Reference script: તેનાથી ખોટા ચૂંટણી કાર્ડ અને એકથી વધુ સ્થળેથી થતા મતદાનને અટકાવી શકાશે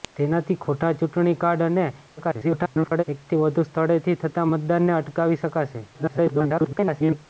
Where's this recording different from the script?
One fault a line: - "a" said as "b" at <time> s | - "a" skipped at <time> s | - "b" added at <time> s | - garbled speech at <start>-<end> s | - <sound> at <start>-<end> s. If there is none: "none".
- garbled speech at 2.2-3.0 s
- garbled speech at 5.9-7.3 s